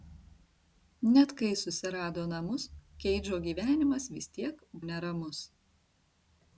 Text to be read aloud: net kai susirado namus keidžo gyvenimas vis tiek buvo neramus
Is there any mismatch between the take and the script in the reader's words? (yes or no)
yes